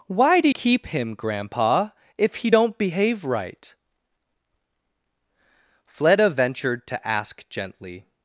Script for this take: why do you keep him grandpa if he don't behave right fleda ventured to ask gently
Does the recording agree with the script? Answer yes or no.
no